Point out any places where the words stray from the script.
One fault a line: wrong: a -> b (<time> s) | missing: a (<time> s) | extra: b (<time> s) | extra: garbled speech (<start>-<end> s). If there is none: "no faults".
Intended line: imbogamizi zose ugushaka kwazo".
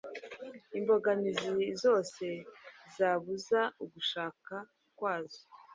extra: zabuza (3.0 s)